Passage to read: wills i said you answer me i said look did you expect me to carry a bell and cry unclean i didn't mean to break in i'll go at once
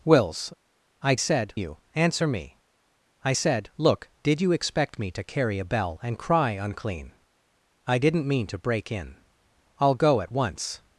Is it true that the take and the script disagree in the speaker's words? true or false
false